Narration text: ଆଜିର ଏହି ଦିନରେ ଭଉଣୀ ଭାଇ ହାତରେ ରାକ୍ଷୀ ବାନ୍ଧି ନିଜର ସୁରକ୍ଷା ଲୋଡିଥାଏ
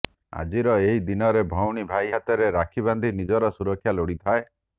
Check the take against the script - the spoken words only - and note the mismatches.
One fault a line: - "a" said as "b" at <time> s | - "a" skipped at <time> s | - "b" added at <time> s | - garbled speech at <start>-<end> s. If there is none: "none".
none